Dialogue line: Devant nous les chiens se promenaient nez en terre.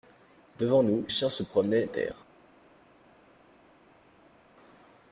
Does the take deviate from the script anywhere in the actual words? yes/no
yes